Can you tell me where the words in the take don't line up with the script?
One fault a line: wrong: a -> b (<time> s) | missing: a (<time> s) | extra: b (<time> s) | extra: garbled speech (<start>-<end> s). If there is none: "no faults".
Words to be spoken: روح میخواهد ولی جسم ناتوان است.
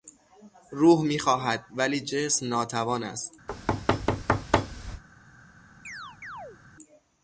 no faults